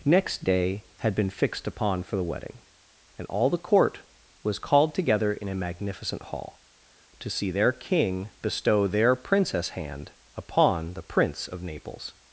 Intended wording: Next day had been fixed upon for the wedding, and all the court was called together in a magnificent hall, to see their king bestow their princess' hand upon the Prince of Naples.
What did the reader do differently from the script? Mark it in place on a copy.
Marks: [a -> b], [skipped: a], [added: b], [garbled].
Next day had been fixed upon for the wedding, and all the court was called together in a magnificent hall, to see their king bestow their princess' hand upon the Prince of Naples.